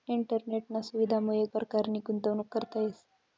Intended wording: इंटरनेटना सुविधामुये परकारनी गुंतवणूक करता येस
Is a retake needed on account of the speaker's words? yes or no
no